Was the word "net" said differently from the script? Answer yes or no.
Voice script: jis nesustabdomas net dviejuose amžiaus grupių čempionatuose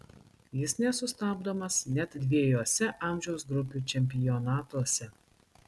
no